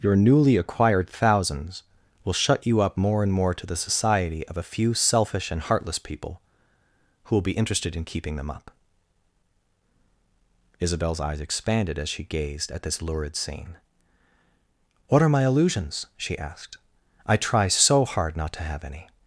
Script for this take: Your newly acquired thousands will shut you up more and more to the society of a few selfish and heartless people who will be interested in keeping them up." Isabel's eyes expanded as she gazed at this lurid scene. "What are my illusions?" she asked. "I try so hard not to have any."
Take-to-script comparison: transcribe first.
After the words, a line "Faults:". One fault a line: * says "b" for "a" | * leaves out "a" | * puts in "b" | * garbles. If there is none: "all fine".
Your newly acquired thousands will shut you up more and more to the society of a few selfish and heartless people who will be interested in keeping them up." Isabel's eyes expanded as she gazed at this lurid scene. "What are my illusions?" she asked. "I try so hard not to have any."
Faults:
all fine